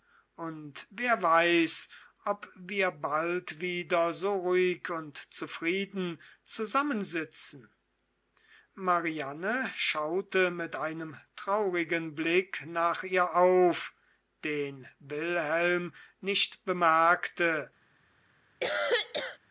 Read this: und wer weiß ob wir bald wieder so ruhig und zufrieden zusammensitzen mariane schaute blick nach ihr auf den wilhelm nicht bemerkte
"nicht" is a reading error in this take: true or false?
false